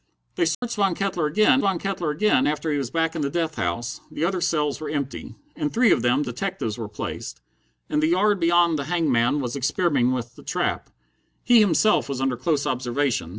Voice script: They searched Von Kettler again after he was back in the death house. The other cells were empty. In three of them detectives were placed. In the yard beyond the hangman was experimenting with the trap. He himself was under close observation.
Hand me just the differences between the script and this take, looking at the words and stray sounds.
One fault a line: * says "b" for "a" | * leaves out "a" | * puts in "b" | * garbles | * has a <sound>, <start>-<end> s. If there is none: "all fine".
* has a dropout, 0.5-0.6 s
* puts in "Von Kettler again"